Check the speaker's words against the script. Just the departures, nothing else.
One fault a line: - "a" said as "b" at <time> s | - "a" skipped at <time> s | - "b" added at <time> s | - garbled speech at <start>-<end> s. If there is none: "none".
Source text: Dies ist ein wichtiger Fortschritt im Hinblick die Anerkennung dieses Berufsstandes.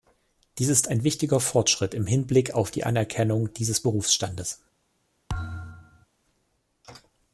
- "auf" added at 2.5 s